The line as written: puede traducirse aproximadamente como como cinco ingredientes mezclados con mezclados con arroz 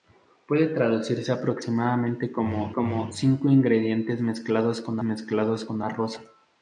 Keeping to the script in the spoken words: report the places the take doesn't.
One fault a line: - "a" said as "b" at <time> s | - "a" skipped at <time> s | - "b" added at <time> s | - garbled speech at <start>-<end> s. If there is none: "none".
none